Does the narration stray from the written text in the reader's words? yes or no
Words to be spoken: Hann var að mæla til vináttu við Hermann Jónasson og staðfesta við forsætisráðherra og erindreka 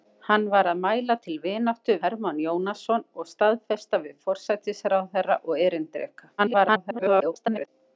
yes